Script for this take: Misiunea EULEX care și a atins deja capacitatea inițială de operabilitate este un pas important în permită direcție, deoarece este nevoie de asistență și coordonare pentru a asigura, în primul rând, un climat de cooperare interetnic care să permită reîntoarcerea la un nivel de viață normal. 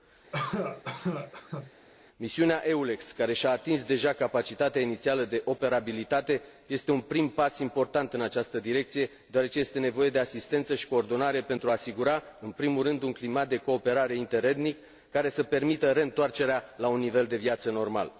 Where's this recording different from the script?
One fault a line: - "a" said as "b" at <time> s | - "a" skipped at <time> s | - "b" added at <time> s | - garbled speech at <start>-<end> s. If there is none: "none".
- "prim" added at 7.0 s
- "permită" said as "această" at 8.2 s